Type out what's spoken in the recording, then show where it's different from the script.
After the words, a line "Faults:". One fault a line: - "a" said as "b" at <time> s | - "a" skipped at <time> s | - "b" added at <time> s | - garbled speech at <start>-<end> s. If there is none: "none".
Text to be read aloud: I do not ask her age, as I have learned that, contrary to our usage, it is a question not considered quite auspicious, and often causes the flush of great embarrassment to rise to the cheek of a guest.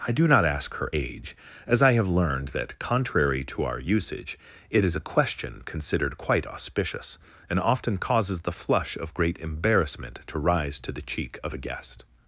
I do not ask her age, as I have learned that, contrary to our usage, it is a question considered quite auspicious, and often causes the flush of great embarrassment to rise to the cheek of a guest.
Faults:
- "not" skipped at 5.6 s